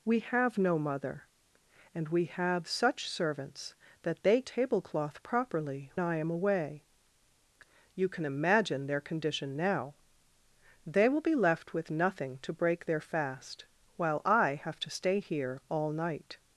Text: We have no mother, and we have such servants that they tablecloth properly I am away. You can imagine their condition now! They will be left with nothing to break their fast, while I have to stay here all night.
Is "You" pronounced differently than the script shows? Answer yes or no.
no